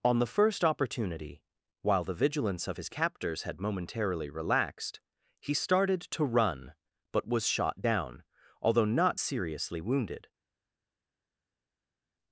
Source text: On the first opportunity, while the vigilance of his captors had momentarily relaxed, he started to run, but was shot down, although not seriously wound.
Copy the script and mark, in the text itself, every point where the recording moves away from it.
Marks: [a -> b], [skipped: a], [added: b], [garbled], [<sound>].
On the first opportunity, while the vigilance of his captors had momentarily relaxed, he started to run, but was shot down, although not seriously [wound. -> wounded]